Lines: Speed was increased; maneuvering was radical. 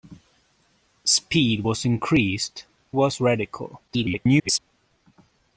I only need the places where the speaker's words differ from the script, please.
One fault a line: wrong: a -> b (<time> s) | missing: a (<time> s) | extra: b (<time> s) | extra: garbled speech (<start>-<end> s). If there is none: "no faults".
missing: maneuvering (2.6 s)
extra: garbled speech (3.9-4.6 s)